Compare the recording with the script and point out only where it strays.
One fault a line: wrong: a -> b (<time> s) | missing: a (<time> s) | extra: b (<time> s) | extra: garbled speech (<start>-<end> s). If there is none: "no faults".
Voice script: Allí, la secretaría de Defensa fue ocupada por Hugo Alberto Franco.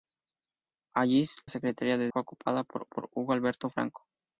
missing: la (1.2 s)
missing: Defensa (2.1 s)
extra: por (2.8 s)